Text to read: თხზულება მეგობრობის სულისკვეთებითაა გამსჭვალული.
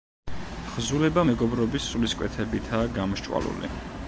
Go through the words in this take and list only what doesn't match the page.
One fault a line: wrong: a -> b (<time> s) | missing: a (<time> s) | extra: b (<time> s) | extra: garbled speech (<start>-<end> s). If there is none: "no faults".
no faults